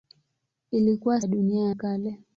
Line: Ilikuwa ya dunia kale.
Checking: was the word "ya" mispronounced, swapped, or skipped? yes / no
no